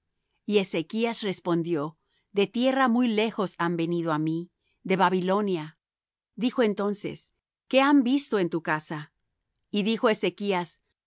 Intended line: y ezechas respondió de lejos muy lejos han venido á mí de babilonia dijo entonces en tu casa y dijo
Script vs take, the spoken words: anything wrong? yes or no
yes